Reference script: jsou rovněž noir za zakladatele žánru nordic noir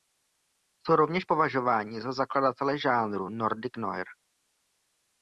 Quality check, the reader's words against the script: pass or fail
fail